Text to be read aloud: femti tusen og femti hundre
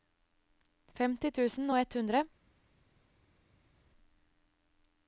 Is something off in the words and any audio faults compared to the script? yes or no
yes